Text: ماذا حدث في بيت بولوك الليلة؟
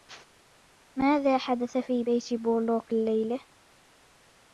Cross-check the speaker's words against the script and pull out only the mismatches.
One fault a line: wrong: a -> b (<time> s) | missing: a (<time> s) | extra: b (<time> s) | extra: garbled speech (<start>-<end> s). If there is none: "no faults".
no faults